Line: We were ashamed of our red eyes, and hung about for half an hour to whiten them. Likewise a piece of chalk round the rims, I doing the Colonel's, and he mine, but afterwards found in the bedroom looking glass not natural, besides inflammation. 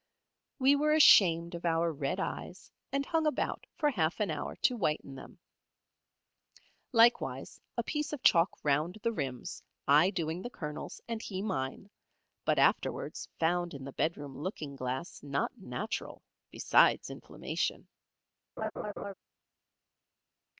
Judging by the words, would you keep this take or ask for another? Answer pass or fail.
pass